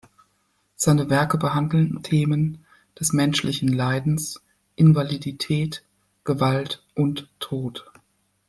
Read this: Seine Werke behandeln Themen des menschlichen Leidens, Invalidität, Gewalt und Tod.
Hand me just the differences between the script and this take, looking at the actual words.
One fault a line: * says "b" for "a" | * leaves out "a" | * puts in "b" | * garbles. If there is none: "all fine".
all fine